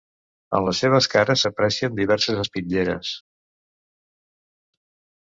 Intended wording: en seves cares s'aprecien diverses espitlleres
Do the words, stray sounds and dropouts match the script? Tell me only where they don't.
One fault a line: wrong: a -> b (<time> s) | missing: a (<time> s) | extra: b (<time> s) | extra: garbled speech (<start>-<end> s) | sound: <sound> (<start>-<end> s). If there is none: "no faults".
extra: les (0.7 s)